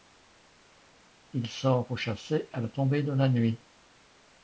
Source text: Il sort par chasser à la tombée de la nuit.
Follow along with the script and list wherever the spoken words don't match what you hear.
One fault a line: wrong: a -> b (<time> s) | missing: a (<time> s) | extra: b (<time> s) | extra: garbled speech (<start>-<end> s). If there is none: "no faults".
wrong: par -> pour (1.8 s)